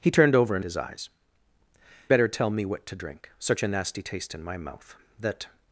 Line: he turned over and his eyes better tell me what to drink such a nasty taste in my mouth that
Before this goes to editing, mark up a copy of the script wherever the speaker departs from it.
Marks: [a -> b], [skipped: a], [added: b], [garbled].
he turned over and his eyes better tell me what to drink such a nasty taste in my mouth that